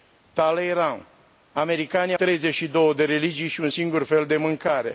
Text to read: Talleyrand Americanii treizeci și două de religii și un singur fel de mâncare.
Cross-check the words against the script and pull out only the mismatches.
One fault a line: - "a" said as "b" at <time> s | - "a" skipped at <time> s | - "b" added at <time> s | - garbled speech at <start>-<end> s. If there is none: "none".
none